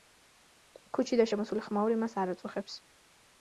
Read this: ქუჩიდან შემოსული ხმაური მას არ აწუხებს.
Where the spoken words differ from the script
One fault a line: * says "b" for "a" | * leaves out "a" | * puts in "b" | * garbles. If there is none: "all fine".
all fine